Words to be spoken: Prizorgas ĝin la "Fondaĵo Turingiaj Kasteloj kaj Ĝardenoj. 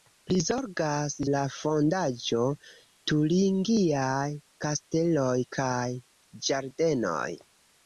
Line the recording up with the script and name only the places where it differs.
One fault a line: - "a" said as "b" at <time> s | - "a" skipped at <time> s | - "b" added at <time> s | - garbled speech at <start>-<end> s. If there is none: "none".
- "ĝin" skipped at 1.1 s